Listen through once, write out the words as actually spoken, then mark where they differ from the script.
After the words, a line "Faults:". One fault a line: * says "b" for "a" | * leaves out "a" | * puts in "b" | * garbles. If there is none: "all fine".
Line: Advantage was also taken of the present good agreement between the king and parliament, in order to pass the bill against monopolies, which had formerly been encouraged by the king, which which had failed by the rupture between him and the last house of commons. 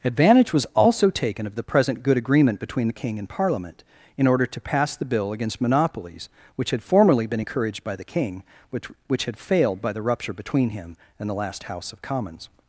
Advantage was also taken of the present good agreement between the king and parliament, in order to pass the bill against monopolies, which had formerly been encouraged by the king, which which had failed by the rupture between him and the last house of commons.
Faults:
all fine